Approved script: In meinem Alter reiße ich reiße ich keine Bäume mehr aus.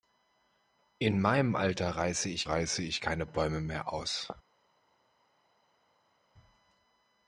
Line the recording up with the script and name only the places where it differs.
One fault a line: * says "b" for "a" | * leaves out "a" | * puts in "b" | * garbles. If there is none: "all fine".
all fine